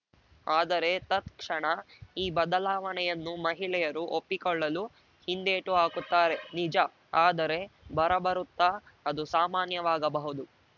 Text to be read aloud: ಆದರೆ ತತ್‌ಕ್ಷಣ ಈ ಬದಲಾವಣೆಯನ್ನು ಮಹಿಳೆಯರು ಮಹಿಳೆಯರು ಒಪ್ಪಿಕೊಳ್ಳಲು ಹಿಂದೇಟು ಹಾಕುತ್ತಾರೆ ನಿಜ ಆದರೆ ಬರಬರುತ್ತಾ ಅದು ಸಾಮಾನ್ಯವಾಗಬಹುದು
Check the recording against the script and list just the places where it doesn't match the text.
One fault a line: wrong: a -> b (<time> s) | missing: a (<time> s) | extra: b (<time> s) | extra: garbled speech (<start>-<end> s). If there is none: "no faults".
missing: ಮಹಿಳೆಯರು (4.0 s)